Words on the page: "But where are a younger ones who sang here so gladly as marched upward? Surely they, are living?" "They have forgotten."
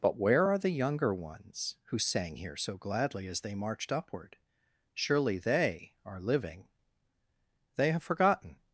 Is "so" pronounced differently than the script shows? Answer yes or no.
no